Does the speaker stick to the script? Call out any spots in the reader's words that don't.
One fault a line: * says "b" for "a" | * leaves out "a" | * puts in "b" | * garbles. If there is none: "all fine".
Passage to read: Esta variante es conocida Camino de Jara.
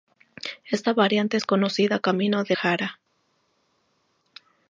all fine